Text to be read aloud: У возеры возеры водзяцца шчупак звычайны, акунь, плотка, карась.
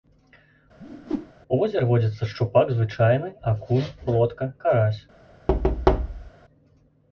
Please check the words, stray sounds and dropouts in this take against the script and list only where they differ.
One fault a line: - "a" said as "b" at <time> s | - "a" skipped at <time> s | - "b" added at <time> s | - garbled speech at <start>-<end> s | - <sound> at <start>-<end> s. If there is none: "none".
- whoosh at 0.8-1.3 s
- "возеры" skipped at 1.9 s
- thud at 5.5-6.3 s